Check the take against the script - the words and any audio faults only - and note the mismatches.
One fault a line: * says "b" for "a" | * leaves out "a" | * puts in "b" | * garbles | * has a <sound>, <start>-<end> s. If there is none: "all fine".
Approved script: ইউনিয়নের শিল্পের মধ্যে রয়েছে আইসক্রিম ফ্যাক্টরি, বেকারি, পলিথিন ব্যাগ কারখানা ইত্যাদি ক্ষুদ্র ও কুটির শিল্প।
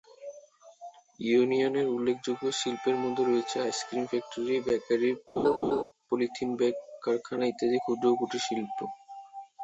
* puts in "উল্লেখযোগ্য"
* has a laugh, 5.4-5.8 s